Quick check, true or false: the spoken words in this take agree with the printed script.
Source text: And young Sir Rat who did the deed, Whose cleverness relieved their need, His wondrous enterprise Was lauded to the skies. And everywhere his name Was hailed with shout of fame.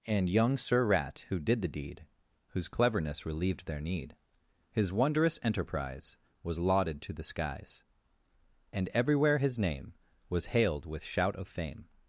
true